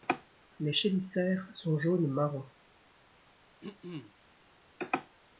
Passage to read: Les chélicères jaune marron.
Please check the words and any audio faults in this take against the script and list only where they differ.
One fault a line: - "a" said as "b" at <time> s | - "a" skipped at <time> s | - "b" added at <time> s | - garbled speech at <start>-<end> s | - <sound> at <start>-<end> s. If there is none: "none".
- "sont" added at 1.5 s
- throat clearing at 3.6-4.1 s